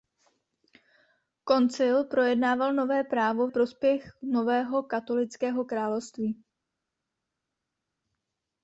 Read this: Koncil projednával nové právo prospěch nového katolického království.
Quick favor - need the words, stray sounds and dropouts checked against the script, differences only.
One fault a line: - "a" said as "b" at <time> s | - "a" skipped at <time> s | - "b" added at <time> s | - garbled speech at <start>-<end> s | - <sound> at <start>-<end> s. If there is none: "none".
none